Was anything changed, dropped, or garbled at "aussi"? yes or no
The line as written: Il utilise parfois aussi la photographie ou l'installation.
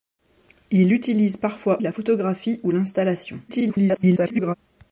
yes